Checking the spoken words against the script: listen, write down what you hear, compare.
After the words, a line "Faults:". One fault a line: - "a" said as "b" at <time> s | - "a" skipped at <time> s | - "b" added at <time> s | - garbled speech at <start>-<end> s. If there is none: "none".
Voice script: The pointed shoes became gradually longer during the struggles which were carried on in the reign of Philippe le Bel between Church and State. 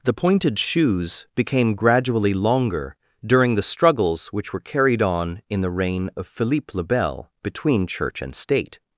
The pointed shoes became gradually longer during the struggles which were carried on in the reign of Philippe le Bel between Church and State.
Faults:
none